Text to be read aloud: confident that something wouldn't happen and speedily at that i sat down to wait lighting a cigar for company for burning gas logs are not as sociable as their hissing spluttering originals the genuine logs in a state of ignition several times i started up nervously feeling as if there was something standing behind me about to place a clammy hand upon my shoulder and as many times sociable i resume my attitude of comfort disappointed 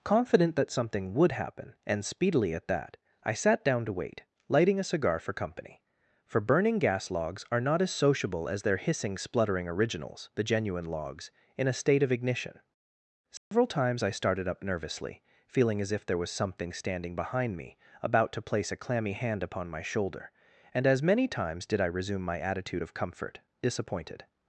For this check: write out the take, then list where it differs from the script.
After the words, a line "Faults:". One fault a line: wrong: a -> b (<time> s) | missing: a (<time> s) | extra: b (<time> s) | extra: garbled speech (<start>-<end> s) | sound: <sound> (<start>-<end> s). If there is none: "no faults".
confident that something would happen and speedily at that i sat down to wait lighting a cigar for company for burning gas logs are not as sociable as their hissing spluttering originals the genuine logs in a state of ignition several times i started up nervously feeling as if there was something standing behind me about to place a clammy hand upon my shoulder and as many times did i resume my attitude of comfort disappointed
Faults:
wrong: wouldn't -> would (1.1 s)
sound: dropout (13.4-13.5 s)
wrong: sociable -> did (21.7 s)